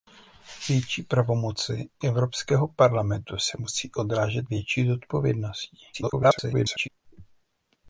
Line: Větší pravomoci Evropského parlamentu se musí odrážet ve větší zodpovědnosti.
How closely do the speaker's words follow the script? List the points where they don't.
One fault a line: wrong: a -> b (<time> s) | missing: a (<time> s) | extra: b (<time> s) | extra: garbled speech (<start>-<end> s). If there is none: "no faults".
missing: ve (4.5 s)
extra: garbled speech (5.9-6.9 s)